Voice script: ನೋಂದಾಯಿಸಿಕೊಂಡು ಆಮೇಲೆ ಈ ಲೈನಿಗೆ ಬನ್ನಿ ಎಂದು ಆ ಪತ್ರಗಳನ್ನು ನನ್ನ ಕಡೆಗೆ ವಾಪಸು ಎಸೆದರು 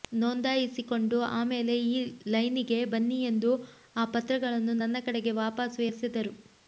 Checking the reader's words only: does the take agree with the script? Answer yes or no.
yes